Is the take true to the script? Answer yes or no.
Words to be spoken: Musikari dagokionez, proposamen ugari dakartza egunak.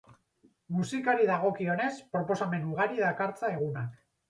yes